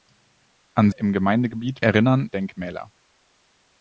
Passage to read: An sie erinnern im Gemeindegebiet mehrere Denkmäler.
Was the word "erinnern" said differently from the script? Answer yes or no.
yes